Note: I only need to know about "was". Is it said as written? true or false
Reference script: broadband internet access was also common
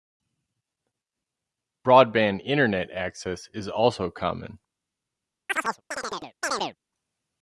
false